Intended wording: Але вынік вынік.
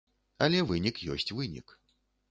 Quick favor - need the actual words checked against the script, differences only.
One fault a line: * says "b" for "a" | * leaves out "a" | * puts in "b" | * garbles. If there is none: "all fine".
* puts in "ёсць"